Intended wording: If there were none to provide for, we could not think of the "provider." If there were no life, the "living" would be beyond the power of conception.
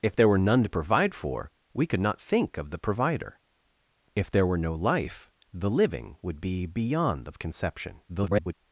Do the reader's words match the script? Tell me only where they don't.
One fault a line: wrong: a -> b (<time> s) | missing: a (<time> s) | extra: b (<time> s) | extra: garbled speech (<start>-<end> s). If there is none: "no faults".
missing: power (7.3 s)
extra: garbled speech (8.1-8.5 s)